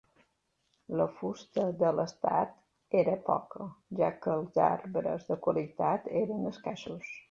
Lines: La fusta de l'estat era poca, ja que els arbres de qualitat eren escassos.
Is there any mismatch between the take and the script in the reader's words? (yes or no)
no